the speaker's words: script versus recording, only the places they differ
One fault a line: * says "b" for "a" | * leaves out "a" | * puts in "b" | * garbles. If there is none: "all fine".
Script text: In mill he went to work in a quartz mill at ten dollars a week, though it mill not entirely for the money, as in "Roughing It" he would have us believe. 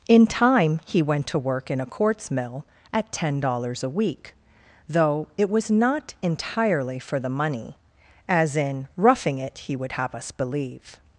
* says "time" for "mill"
* says "was" for "mill"